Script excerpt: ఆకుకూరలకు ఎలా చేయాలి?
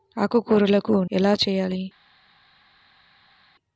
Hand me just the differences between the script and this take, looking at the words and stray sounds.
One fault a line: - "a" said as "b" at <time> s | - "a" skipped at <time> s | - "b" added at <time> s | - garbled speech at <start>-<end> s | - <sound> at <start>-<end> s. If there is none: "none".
none